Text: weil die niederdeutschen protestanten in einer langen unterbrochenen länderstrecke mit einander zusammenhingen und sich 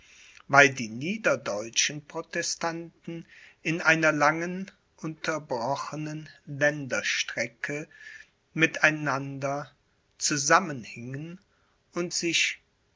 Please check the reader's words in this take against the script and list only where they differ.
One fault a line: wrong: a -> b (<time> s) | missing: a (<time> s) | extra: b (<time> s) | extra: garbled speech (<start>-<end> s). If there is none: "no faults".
no faults